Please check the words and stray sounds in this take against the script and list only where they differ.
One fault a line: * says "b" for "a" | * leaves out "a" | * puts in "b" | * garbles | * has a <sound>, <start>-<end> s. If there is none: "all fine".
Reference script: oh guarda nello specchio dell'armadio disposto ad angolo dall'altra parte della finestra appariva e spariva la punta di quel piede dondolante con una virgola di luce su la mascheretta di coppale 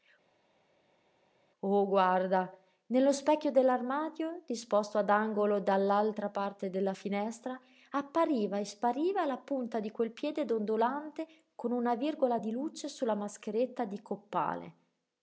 all fine